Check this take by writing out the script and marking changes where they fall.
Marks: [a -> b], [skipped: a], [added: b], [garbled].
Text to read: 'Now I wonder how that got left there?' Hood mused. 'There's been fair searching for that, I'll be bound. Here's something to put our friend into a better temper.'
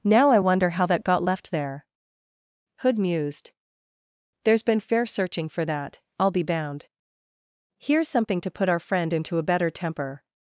'Now I wonder how that got left there?' Hood mused. 'There's been fair searching for that, I'll be bound. Here's something to put our friend into a better temper.'